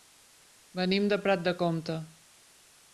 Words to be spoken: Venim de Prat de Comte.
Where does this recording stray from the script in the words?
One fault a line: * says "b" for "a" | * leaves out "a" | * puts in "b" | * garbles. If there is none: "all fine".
all fine